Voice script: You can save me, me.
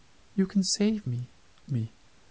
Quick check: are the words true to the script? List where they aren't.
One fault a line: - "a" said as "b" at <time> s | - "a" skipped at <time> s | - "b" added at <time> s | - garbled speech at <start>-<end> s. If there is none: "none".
none